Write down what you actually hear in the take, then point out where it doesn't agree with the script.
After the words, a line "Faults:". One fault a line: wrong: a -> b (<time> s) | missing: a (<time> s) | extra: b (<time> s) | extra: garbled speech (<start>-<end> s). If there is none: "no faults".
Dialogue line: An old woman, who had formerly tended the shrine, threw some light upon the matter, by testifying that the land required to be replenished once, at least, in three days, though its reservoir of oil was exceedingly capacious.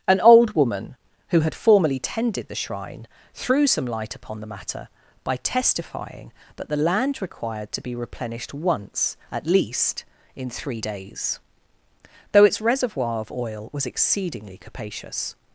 An old woman, who had formerly tended the shrine, threw some light upon the matter, by testifying that the land required to be replenished once, at least, in three days, though its reservoir of oil was exceedingly capacious.
Faults:
no faults